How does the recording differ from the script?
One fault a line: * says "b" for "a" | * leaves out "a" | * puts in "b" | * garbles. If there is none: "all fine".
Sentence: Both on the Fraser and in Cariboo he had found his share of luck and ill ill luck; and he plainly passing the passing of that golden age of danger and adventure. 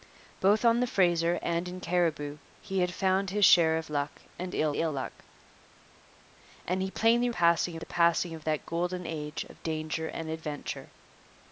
all fine